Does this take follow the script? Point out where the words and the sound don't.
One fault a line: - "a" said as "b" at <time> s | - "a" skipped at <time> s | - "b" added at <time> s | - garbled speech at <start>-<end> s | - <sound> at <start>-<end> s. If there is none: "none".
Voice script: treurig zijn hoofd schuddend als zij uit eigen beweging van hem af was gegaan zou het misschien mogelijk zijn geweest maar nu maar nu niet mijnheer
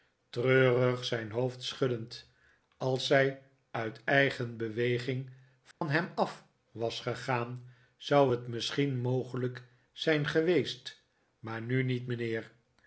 - dropout at 5.7-5.8 s
- "maar nu" skipped at 11.8 s